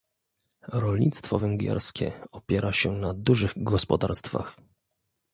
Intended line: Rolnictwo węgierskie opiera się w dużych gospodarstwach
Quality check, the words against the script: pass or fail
fail